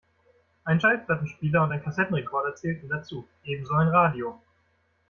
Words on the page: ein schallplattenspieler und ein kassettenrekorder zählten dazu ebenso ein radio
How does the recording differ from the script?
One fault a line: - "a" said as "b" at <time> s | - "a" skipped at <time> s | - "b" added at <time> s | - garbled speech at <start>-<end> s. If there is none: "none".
none